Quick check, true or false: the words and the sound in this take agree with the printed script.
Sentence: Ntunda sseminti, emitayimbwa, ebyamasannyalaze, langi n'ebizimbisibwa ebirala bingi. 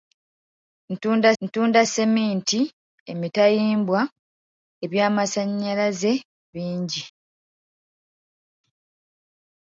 false